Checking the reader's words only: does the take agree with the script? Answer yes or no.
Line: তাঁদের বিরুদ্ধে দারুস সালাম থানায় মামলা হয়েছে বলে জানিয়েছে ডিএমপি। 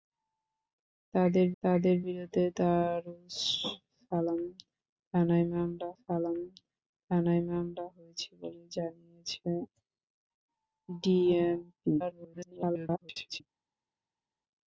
no